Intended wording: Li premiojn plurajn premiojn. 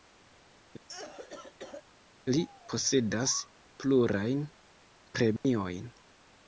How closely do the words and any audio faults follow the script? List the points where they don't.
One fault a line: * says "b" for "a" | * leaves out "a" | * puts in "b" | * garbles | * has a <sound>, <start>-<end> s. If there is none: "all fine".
* has a cough, 0.9-1.8 s
* says "posedas" for "premiojn"
* has a dropout, 5.4-5.4 s